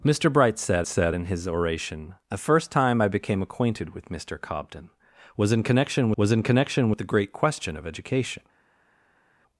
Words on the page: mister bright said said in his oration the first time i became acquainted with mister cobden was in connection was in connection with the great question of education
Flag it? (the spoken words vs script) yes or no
no